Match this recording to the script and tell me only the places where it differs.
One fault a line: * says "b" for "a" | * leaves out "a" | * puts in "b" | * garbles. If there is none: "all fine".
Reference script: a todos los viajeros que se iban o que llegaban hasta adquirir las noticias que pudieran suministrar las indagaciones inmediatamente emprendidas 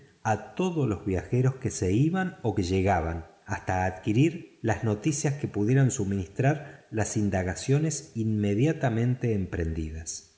all fine